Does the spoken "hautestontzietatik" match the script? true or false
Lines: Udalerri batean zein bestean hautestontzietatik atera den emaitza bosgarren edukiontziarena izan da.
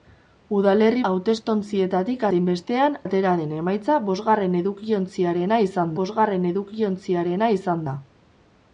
false